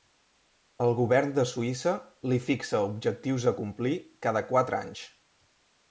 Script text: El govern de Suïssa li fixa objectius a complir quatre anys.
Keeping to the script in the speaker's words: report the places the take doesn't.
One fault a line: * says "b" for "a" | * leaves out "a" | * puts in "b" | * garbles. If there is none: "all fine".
* puts in "cada"